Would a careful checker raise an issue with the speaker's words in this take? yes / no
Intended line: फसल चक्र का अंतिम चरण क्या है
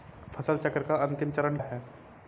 yes